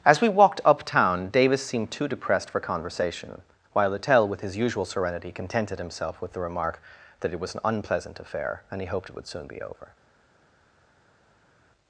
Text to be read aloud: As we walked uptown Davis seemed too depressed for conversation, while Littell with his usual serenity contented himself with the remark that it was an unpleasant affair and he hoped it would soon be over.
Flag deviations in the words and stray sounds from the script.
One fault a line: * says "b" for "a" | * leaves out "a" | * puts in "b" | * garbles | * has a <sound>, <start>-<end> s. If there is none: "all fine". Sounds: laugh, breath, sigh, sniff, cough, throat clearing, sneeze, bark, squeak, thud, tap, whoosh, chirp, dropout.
all fine